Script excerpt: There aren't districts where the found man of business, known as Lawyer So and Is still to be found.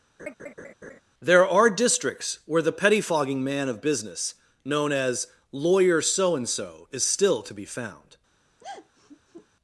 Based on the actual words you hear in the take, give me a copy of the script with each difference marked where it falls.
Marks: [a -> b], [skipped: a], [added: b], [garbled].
There [aren't -> are] districts where the [found -> pettifogging] man of business, known as Lawyer So and [added: So] Is still to be found.